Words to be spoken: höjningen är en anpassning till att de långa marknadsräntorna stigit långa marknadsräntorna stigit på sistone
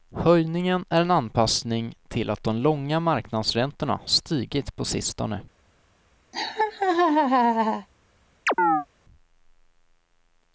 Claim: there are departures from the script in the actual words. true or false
true